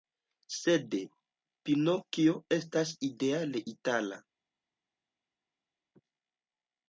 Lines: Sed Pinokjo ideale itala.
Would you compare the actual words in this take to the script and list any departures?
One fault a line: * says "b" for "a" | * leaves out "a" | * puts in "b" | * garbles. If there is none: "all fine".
* puts in "estas"